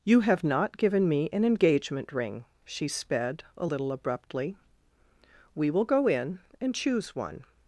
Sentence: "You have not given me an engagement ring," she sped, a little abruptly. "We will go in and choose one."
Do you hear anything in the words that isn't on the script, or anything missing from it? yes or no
no